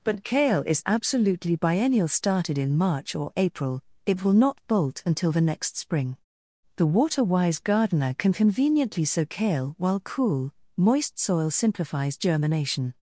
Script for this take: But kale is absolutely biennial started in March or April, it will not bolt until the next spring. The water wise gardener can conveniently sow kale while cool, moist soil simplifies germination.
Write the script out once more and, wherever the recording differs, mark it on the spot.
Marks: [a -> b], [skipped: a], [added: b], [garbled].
But kale is absolutely biennial started in March or April, it will not bolt until the next spring. The water wise gardener can conveniently sow kale while cool, moist soil simplifies germination.